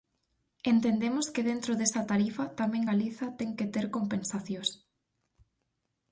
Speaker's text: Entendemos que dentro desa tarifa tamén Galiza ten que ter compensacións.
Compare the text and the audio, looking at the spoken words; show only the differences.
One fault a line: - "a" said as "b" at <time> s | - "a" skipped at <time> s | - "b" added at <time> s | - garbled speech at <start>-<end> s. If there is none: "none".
none